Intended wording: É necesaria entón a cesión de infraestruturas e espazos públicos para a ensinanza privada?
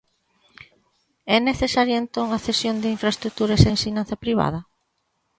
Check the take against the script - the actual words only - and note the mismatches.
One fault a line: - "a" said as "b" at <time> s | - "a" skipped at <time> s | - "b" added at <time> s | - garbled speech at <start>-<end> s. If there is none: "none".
- "espazos públicos para" skipped at 3.7 s